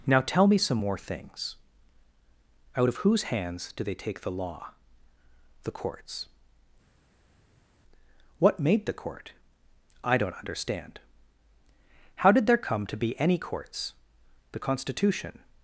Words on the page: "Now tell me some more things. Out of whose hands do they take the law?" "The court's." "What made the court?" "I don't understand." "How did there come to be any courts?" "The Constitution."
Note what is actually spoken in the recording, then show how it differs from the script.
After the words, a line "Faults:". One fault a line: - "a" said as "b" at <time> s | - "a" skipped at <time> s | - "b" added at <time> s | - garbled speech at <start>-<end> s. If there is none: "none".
"Now tell me some more things. Out of whose hands do they take the law?" "The court's." "What made the court?" "I don't understand." "How did there come to be any courts?" "The Constitution."
Faults:
none